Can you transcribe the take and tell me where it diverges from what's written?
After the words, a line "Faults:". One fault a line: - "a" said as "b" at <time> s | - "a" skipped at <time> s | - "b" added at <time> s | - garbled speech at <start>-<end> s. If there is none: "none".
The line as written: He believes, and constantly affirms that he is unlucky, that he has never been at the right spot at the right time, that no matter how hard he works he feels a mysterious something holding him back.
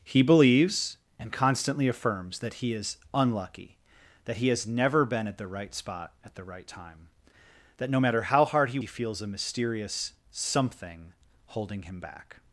He believes, and constantly affirms that he is unlucky, that he has never been at the right spot at the right time, that no matter how hard he he feels a mysterious something holding him back.
Faults:
- "works" skipped at 8.8 s